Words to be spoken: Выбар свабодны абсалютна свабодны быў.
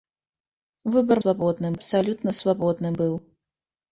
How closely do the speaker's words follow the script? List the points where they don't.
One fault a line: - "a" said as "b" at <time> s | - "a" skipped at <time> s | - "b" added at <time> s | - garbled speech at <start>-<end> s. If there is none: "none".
none